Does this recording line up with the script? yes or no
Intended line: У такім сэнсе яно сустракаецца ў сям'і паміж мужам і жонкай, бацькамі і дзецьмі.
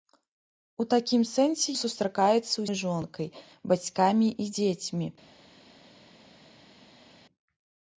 no